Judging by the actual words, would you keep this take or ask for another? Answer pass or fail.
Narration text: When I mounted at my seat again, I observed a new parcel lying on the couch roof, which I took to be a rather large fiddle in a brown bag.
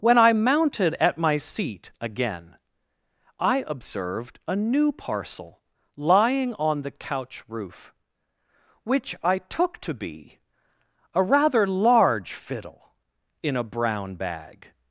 pass